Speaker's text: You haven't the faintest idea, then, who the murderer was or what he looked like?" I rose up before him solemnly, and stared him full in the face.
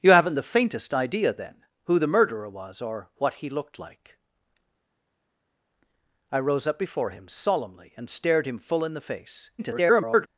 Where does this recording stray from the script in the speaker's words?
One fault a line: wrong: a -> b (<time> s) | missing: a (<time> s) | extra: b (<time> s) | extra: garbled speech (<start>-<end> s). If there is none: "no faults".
extra: garbled speech (9.6-10.3 s)